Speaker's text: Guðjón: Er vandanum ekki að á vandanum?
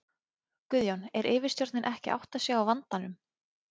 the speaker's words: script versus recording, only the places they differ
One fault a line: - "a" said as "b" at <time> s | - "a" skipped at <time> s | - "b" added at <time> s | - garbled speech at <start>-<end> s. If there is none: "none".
- "vandanum" said as "yfirstjórnin" at 1.3 s
- "átta sig" added at 2.2 s